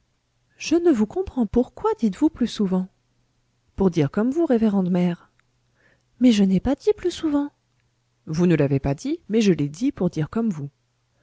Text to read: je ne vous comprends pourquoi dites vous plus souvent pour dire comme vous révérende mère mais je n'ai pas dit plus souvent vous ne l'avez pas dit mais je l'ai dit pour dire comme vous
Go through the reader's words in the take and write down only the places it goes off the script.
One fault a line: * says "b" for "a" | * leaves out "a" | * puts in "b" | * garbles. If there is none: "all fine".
all fine